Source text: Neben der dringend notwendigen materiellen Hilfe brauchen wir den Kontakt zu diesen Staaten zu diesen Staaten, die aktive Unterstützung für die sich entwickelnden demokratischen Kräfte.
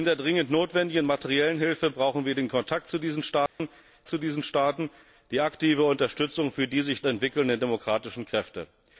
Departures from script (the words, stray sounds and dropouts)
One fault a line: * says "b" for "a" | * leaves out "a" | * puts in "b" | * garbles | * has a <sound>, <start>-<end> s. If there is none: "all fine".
* has a dropout, 3.5-3.6 s